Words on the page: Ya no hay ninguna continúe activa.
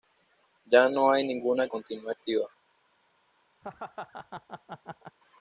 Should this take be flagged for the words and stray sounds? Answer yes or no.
yes